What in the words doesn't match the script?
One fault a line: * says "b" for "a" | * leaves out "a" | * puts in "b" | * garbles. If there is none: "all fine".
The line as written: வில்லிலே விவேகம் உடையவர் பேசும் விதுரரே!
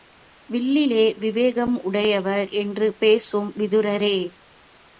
* puts in "என்று"